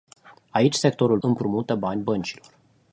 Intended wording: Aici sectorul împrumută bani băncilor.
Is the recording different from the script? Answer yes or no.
no